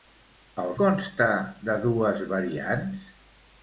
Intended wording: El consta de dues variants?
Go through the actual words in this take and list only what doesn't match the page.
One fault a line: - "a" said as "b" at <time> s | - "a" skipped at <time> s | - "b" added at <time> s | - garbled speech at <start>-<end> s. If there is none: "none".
none